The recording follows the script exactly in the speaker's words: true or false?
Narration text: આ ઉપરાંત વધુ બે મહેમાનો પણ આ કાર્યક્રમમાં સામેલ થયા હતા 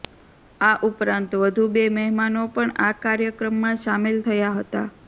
true